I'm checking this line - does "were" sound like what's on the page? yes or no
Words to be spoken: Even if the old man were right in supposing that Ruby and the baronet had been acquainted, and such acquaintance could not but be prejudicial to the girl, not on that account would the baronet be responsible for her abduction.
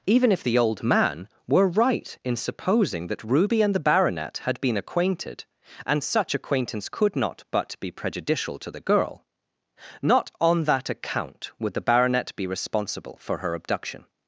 yes